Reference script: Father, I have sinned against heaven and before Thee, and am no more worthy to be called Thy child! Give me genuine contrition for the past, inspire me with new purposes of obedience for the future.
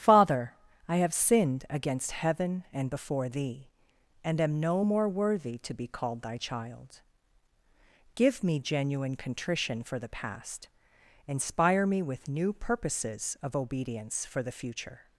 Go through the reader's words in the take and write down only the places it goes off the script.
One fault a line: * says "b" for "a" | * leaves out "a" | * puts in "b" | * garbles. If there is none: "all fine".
all fine